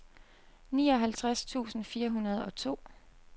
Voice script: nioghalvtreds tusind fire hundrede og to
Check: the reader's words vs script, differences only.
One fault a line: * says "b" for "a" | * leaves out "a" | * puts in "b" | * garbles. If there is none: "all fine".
all fine